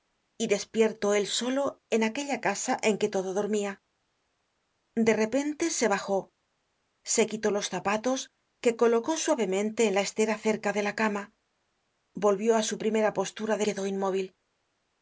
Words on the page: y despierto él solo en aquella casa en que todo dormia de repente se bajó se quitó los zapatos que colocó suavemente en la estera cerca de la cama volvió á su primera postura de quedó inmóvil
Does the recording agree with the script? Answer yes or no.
yes